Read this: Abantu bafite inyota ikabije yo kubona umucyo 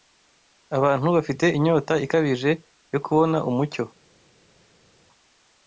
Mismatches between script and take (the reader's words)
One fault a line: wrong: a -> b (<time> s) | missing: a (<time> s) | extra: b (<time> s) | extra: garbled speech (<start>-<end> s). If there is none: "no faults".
no faults